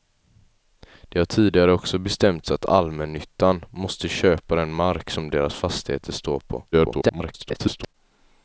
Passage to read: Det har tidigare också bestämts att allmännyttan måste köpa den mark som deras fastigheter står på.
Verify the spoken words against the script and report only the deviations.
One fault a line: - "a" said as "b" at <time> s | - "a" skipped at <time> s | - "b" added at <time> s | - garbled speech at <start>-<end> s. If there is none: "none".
- garbled speech at 6.7-7.9 s